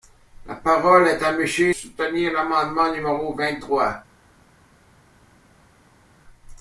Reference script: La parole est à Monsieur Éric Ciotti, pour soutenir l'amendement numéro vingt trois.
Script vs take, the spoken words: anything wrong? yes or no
yes